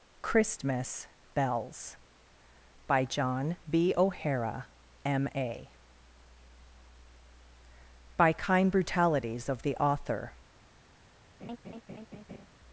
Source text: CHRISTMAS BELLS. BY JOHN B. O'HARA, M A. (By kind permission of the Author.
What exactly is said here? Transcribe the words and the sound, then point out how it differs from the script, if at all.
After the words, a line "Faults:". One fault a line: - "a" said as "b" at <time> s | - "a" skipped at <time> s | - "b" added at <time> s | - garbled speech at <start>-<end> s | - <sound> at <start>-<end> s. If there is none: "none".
CHRISTMAS BELLS. BY JOHN B. O'HARA, M A. (By kind brutalities of the Author.
Faults:
- "permission" said as "brutalities" at 8.7 s
- laugh at 11.4-12.5 s